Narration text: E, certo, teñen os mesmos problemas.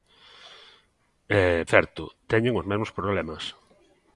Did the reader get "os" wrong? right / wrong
right